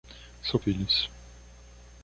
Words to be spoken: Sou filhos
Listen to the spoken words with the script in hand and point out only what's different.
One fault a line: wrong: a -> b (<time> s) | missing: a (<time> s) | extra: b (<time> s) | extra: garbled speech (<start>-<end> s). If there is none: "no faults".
no faults